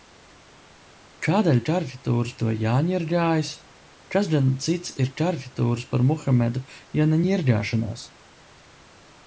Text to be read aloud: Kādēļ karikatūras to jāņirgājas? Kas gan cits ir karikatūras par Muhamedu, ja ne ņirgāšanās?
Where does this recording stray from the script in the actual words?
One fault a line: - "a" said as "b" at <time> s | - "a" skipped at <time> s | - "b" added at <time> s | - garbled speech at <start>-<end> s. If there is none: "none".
none